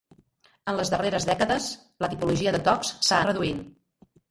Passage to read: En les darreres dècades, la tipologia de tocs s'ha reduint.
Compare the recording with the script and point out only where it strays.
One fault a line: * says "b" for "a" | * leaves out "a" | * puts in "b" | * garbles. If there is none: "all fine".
all fine